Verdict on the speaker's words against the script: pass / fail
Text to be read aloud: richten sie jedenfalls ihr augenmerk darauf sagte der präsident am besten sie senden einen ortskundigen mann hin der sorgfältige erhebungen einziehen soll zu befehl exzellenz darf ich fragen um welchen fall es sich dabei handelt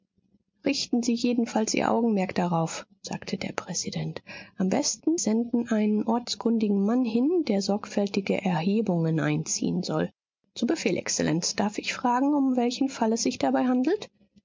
fail